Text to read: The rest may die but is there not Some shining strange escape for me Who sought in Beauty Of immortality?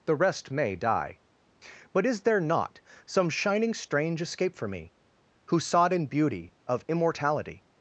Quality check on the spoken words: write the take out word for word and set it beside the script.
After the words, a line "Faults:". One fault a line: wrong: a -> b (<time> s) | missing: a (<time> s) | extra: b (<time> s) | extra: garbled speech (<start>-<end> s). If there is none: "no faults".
The rest may die but is there not Some shining strange escape for me Who sought in Beauty Of immortality?
Faults:
no faults